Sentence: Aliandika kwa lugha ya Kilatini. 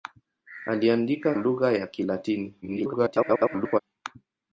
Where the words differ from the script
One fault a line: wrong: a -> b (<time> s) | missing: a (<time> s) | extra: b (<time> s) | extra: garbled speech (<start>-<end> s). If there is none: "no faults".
missing: kwa (1.4 s)
extra: garbled speech (2.6-3.8 s)